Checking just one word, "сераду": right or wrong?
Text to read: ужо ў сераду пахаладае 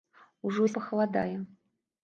wrong